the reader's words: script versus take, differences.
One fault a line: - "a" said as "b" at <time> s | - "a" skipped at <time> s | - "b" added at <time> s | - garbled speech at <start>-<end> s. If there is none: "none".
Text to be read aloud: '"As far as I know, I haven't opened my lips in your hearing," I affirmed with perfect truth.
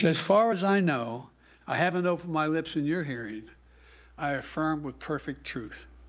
- "affirmed" said as "affirm" at 4.3 s